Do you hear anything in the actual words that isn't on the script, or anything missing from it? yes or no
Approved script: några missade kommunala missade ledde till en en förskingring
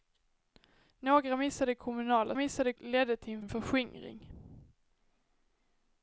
no